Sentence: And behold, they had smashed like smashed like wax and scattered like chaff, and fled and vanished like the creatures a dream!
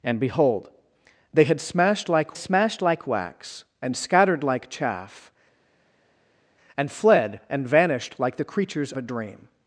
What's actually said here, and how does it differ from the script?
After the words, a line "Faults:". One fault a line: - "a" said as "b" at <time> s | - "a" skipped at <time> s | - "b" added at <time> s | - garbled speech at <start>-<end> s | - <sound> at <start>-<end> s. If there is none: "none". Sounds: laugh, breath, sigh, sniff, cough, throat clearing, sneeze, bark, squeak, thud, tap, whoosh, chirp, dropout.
And behold, they had smashed like smashed like wax and scattered like chaff, and fled and vanished like the creatures a dream!
Faults:
none